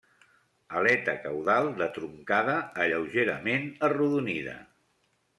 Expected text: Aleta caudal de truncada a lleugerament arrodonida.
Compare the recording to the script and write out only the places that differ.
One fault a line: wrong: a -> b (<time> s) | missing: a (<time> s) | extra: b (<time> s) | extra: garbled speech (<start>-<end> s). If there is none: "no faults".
no faults